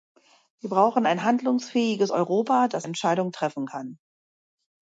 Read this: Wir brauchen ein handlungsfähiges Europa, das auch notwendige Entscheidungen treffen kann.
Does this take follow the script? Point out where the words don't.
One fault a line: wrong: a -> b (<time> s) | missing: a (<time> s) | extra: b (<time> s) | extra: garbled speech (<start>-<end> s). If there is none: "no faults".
missing: auch notwendige (2.9 s)